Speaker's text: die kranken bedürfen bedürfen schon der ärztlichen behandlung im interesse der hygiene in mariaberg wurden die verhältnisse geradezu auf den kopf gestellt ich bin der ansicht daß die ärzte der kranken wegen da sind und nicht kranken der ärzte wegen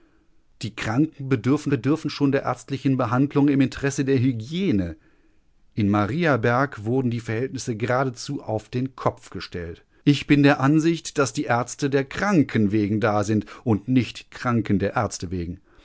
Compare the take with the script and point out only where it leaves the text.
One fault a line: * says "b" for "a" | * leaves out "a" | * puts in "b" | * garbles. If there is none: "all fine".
all fine